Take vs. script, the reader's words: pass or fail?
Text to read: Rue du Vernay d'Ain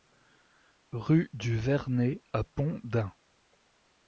fail